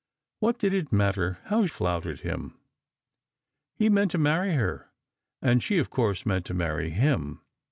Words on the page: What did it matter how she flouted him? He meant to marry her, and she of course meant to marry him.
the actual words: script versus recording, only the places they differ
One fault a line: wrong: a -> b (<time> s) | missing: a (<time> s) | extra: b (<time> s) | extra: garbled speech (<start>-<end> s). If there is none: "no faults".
missing: she (1.7 s)